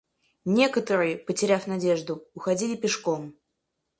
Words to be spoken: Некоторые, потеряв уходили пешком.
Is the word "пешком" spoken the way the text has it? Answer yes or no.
yes